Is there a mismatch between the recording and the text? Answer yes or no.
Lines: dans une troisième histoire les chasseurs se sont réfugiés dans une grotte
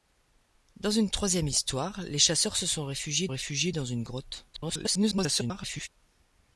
yes